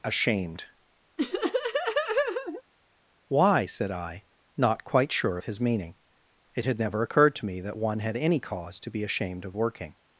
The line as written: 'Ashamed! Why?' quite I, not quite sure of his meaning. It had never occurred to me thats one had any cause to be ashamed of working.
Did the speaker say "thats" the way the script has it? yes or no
no